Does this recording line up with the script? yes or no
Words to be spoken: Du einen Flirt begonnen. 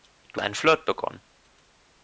yes